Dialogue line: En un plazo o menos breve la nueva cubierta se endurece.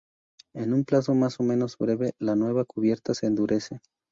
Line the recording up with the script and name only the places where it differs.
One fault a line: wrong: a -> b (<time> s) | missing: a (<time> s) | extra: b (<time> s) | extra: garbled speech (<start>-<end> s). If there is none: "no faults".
extra: más (1.1 s)